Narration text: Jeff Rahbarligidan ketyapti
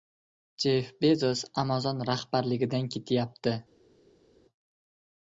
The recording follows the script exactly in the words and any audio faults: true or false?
false